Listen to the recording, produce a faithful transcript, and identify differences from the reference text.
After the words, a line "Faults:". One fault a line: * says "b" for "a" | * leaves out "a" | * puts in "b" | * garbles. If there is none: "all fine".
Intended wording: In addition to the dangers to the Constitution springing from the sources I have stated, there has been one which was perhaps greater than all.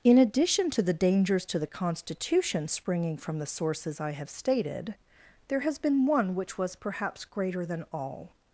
In addition to the dangers to the Constitution springing from the sources I have stated, there has been one which was perhaps greater than all.
Faults:
all fine